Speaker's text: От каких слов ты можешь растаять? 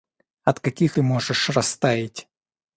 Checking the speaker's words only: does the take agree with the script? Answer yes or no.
no